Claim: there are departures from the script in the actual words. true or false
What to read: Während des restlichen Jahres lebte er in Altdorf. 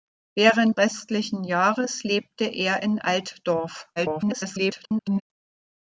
true